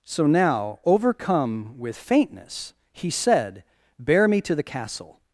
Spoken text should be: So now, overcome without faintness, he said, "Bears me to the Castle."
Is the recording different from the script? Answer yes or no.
yes